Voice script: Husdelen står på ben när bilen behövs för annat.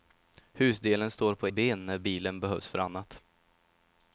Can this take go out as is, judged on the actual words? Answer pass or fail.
pass